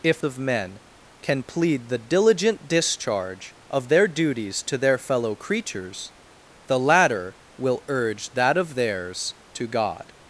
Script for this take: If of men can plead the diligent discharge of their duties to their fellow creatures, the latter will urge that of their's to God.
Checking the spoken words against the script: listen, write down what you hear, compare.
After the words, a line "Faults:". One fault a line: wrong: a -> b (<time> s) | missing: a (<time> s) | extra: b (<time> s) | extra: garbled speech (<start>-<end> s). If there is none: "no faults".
If of men can plead the diligent discharge of their duties to their fellow creatures, the latter will urge that of their's to God.
Faults:
no faults